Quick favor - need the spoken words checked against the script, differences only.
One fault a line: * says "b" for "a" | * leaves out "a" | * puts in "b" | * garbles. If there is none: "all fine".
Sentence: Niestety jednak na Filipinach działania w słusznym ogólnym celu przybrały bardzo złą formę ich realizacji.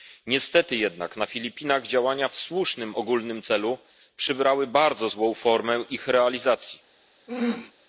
all fine